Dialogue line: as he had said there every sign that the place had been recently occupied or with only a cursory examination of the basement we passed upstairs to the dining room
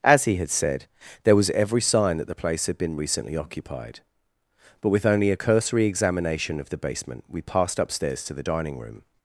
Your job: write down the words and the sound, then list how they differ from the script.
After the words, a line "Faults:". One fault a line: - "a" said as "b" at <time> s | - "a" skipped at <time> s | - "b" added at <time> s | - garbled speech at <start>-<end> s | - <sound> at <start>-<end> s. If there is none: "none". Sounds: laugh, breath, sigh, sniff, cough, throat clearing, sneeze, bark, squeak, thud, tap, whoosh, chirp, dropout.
as he had said there was every sign that the place had been recently occupied but with only a cursory examination of the basement we passed upstairs to the dining room
Faults:
- "was" added at 1.4 s
- "or" said as "but" at 4.8 s